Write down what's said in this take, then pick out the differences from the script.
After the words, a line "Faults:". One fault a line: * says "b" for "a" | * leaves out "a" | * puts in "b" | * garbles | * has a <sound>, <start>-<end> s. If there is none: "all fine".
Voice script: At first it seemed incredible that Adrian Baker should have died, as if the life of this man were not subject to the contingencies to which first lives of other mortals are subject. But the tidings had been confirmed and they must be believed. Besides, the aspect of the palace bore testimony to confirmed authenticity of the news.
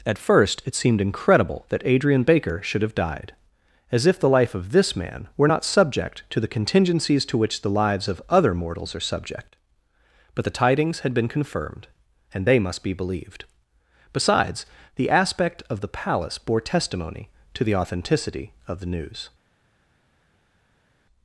At first it seemed incredible that Adrian Baker should have died, as if the life of this man were not subject to the contingencies to which the lives of other mortals are subject. But the tidings had been confirmed and they must be believed. Besides, the aspect of the palace bore testimony to the authenticity of the news.
Faults:
* says "the" for "first"
* says "the" for "confirmed"